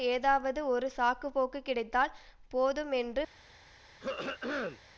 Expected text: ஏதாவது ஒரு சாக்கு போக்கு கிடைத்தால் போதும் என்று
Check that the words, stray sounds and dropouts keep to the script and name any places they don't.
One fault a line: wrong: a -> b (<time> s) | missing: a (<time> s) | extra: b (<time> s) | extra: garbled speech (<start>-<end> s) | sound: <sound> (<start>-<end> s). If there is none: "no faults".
sound: throat clearing (4.0-4.8 s)